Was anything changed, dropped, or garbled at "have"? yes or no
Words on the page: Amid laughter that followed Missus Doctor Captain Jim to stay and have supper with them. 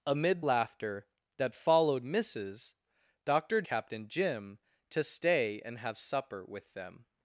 no